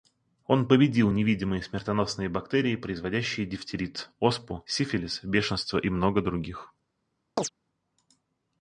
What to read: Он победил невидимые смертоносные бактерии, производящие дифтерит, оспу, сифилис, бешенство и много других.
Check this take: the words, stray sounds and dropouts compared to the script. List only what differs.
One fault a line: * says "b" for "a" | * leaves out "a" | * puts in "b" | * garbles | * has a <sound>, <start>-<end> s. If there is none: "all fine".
* has a chirp, 7.4-7.5 s